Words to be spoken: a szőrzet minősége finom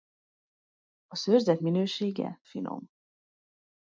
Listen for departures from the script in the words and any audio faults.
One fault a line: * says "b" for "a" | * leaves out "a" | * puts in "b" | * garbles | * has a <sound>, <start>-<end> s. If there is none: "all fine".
all fine